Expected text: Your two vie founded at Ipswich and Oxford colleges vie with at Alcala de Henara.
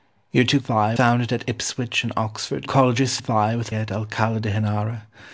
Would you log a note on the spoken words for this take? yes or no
no